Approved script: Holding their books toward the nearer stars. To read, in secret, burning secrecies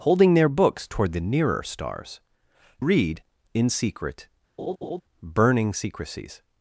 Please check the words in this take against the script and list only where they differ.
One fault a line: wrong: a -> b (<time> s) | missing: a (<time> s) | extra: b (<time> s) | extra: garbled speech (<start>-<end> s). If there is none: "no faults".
missing: To (2.2 s)